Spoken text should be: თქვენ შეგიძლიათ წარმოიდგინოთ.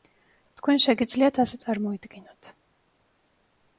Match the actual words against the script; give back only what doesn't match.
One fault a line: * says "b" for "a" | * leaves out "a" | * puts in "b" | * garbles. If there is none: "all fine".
* puts in "ასე"